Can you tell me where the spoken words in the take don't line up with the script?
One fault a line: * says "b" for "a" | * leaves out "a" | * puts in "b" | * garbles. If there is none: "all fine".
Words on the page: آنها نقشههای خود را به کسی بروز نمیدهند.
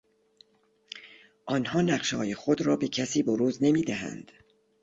all fine